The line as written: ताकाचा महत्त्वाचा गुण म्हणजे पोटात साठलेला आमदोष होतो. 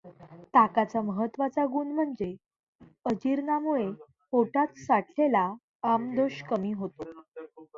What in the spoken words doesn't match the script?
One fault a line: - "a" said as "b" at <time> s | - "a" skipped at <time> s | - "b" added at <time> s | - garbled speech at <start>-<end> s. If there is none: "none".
- "अजीर्णामुळे" added at 3.0 s
- "कमी" added at 6.5 s